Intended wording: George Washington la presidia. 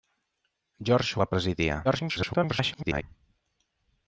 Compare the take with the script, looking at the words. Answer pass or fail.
fail